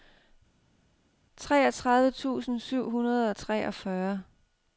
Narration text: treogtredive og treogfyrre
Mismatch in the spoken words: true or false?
true